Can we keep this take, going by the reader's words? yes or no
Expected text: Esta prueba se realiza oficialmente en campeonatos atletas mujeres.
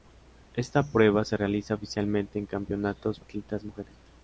yes